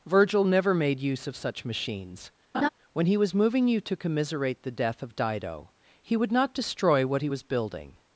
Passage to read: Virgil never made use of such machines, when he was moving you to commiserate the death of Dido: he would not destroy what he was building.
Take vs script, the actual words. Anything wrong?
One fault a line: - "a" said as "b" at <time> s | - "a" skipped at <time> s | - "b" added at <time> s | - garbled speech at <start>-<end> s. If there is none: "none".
none